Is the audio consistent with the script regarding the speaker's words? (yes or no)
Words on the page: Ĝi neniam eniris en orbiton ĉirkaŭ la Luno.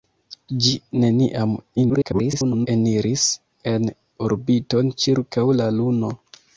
no